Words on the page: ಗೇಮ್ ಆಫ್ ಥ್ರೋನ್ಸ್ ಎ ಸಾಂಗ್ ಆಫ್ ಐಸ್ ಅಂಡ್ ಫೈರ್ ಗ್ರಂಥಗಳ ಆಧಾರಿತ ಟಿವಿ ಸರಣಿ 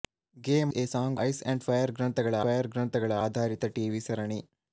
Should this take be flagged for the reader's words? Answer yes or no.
yes